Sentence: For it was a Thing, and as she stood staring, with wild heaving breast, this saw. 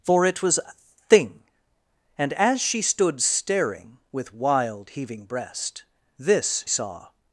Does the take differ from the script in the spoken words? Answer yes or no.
no